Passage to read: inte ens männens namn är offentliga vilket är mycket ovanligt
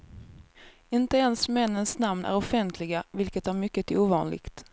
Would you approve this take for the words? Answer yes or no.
yes